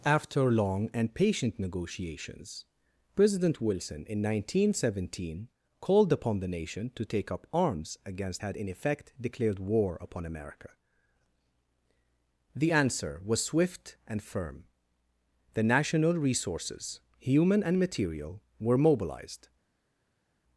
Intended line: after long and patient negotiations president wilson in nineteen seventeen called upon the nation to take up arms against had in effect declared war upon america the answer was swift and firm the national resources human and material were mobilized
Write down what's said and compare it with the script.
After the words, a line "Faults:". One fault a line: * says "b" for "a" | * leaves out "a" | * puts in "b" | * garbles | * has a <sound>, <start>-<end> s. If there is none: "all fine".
after long and patient negotiations president wilson in nineteen seventeen called upon the nation to take up arms against had in effect declared war upon america the answer was swift and firm the national resources human and material were mobilized
Faults:
all fine